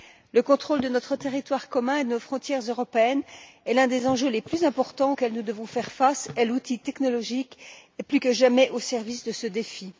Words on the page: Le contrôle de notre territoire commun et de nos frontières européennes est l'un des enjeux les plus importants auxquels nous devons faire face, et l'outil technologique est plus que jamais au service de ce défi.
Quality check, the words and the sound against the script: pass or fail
pass